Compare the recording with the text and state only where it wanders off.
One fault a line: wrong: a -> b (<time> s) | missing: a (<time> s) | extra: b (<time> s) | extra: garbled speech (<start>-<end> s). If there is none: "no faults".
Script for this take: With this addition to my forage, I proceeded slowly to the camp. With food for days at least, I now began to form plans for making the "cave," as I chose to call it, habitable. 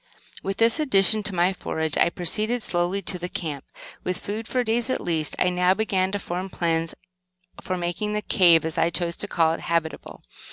no faults